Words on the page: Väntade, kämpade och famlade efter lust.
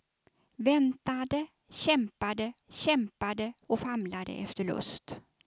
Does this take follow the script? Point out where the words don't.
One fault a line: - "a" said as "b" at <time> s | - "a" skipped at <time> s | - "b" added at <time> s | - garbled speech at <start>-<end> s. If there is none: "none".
- "kämpade" added at 2.7 s